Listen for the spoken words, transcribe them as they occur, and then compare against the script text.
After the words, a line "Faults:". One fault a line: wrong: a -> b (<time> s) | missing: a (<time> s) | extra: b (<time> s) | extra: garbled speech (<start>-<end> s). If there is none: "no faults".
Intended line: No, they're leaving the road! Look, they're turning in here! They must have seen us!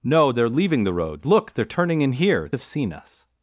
No, they're leaving the road! Look, they're turning in here! Have seen us!
Faults:
missing: They must (2.5 s)